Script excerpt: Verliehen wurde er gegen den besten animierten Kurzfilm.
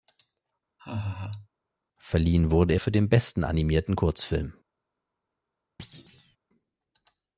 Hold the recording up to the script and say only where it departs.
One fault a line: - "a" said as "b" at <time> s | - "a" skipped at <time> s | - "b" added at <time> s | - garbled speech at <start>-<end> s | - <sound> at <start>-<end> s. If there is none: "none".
- laugh at 0.8-1.5 s
- "gegen" said as "für" at 2.8 s
- thud at 5.8-6.4 s